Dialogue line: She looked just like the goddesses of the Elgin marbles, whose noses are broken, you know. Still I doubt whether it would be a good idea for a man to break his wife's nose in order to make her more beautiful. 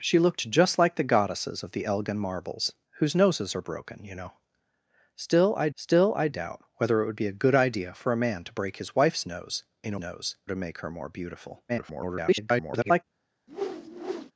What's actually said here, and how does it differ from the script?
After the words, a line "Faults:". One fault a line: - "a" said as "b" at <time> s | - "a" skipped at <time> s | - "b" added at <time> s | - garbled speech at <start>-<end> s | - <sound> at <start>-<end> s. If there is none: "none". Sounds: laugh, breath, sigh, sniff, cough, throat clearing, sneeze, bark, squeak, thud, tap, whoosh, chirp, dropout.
She looked just like the goddesses of the Elgin marbles, whose noses are broken, you know. Still I still I doubt whether it would be a good idea for a man to break his wife's nose in nose to make her more beautiful. [garbled]
Faults:
- "still I" added at 5.7 s
- "order" said as "nose" at 10.0 s
- garbled speech at 11.7-13.0 s
- whoosh at 13.5-14.3 s